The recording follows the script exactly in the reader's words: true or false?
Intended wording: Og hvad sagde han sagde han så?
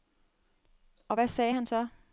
false